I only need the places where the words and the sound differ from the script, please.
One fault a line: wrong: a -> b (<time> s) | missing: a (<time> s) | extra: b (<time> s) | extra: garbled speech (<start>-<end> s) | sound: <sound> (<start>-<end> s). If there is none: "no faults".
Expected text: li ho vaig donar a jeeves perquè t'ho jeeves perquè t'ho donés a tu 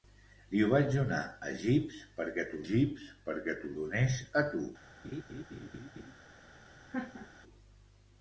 sound: laugh (5.0-6.1 s)
sound: laugh (6.9-7.3 s)